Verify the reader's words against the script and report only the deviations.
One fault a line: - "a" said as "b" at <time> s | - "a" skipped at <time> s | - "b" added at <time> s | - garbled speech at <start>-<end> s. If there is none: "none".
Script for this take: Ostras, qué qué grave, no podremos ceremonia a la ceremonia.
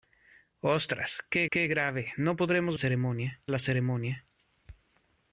none